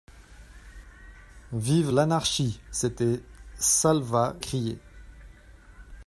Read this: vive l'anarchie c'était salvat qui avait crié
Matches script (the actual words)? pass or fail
fail